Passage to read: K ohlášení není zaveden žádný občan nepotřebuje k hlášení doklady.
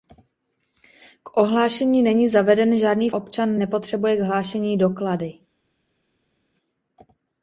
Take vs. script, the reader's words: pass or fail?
pass